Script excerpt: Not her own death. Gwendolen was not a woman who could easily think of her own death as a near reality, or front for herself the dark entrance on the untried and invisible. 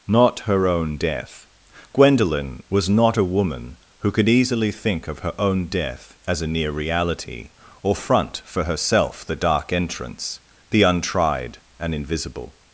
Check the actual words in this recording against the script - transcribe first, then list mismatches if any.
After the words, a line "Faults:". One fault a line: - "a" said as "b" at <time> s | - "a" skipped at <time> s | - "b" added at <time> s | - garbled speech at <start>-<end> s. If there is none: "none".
Not her own death. Gwendolen was not a woman who could easily think of her own death as a near reality, or front for herself the dark entrance the untried and invisible.
Faults:
- "on" skipped at 10.4 s